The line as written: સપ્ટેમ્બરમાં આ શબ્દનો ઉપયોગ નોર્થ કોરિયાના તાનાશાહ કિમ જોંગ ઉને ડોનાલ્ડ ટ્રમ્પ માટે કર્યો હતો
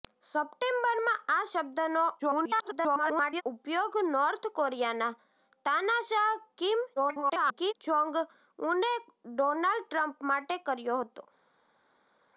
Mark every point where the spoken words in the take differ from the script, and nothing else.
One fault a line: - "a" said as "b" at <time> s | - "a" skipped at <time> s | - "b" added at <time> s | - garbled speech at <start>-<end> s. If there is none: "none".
- garbled speech at 2.2-3.4 s
- garbled speech at 7.0-7.7 s